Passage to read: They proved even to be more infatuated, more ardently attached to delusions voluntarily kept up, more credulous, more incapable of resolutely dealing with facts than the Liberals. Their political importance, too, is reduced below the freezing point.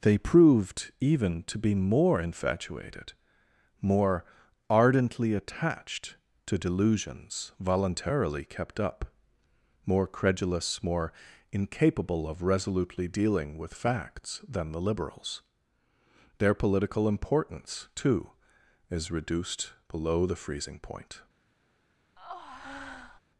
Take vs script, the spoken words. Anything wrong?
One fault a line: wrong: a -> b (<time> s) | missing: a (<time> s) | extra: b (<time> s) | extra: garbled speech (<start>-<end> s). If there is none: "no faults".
no faults